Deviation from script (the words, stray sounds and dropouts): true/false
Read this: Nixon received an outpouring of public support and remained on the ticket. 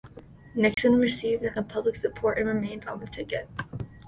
true